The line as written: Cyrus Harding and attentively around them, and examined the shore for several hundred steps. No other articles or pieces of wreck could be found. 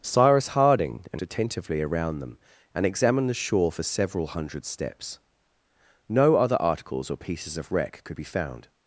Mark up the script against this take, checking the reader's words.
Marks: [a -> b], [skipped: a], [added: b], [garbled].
Cyrus Harding and attentively around them, and examined the shore for several hundred steps. No other articles or pieces of wreck could be found.